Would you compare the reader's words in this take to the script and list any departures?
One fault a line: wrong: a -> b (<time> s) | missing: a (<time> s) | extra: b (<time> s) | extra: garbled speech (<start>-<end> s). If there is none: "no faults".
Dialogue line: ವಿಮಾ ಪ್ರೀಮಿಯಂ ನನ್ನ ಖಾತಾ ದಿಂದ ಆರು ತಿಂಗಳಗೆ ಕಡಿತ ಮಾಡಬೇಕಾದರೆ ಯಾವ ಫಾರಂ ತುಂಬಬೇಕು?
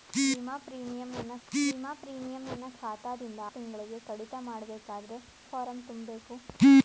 extra: ವಿಮಾ ಪ್ರೀಮಿಯಂ ನನ್ನ (1.5 s)
missing: ಆರು (3.4 s)
missing: ಯಾವ (5.2 s)